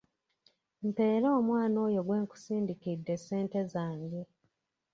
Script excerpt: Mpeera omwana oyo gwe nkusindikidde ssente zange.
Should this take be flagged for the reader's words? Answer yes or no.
no